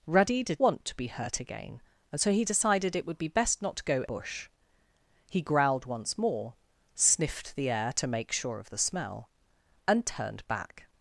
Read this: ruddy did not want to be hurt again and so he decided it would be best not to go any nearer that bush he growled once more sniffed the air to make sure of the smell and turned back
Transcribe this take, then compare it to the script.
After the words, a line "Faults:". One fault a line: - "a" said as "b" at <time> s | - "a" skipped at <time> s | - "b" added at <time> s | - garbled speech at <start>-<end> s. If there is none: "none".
ruddy did want to be hurt again and so he decided it would be best not to go bush he growled once more sniffed the air to make sure of the smell and turned back
Faults:
- "not" skipped at 0.6 s
- "any nearer that" skipped at 4.0 s